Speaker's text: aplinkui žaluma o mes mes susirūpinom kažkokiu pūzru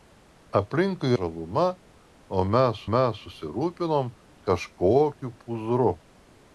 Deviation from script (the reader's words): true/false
false